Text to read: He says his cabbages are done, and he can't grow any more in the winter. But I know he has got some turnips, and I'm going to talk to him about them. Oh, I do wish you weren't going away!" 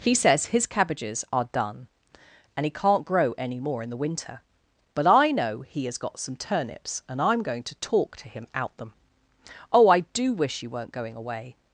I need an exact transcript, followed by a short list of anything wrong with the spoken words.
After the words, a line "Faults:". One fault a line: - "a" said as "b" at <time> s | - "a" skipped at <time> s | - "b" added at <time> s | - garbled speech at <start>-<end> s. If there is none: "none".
He says his cabbages are done, and he can't grow any more in the winter. But I know he has got some turnips, and I'm going to talk to him out them. Oh, I do wish you weren't going away!"
Faults:
- "about" said as "out" at 8.5 s